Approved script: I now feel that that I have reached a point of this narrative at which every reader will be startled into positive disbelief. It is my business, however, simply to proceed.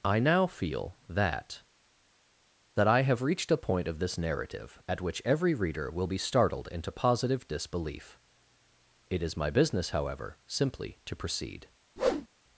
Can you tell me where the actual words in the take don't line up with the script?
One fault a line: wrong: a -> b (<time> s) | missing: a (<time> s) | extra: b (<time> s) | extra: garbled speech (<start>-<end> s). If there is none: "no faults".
no faults